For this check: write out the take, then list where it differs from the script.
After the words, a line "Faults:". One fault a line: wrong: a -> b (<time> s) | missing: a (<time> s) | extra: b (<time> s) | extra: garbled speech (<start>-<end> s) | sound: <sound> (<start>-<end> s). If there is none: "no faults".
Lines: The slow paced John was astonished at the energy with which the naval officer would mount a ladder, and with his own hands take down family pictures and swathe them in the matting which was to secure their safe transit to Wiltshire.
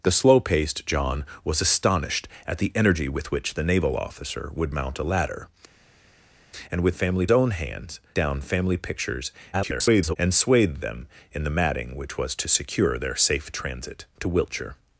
The slow paced John was astonished at the energy with which the naval officer would mount a ladder, and with family own hands down family pictures [garbled] and swathe them in the matting which was to secure their safe transit to Wiltshire.
Faults:
wrong: his -> family (6.9 s)
missing: take (8.0 s)
extra: garbled speech (9.5-10.2 s)